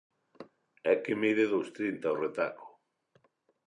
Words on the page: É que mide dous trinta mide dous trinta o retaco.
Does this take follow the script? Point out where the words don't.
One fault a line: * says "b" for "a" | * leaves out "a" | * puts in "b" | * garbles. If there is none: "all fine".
* leaves out "mide dous trinta"